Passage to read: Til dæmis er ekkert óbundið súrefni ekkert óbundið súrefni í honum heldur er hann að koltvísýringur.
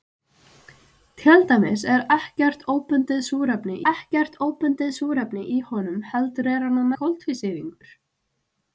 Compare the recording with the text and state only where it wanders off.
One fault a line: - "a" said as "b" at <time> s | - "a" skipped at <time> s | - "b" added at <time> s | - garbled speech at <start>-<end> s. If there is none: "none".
none